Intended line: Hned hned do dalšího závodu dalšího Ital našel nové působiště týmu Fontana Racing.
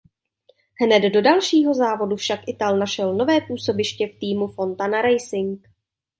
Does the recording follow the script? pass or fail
fail